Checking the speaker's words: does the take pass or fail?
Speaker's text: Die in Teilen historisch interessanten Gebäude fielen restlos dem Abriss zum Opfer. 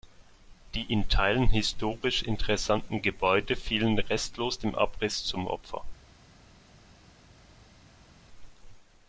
pass